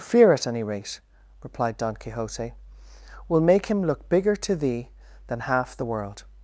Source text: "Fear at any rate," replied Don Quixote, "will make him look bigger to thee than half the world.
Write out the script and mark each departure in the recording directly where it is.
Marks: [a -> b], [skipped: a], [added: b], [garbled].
"Fear at any rate," replied Don Quixote, "will make him look bigger to thee than half the world.